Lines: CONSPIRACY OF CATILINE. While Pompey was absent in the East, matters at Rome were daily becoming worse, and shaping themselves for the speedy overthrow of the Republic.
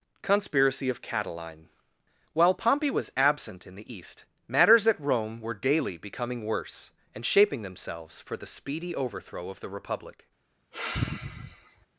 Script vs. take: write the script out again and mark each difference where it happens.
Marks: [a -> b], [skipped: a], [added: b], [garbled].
CONSPIRACY OF CATILINE. While Pompey was absent in the East, matters at Rome were daily becoming worse, and shaping themselves for the speedy overthrow of the Republic.